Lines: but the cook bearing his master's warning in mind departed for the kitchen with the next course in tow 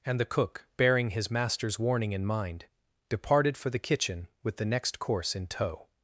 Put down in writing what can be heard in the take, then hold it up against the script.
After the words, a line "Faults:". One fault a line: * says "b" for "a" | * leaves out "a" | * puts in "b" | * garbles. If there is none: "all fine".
and the cook bearing his master's warning in mind departed for the kitchen with the next course in tow
Faults:
* says "and" for "but"